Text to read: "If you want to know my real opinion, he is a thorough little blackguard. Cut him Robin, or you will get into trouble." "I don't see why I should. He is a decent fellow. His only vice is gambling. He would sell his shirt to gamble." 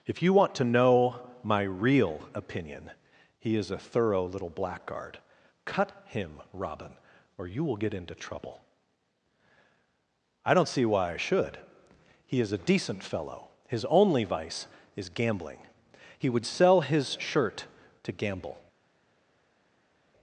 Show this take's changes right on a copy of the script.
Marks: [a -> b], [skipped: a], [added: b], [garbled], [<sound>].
"If you want to know my real opinion, he is a thorough little blackguard. Cut him Robin, or you will get into trouble." "I don't see why I should. He is a decent fellow. His only vice is gambling. He would sell his shirt to gamble."